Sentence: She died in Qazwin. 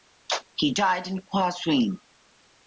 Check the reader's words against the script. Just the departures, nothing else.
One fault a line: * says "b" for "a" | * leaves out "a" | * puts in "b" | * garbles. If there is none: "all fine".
* says "He" for "She"